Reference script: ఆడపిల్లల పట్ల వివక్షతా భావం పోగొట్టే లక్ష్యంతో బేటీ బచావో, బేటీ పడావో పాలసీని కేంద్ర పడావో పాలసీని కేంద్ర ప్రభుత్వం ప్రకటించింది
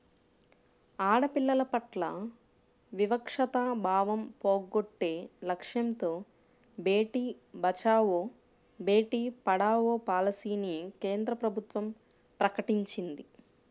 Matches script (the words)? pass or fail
fail